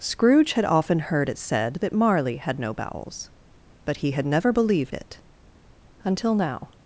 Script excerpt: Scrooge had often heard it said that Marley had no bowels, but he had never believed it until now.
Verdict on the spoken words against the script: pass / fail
pass